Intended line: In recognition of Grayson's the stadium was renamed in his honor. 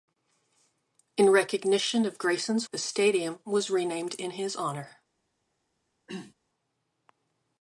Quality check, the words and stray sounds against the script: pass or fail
fail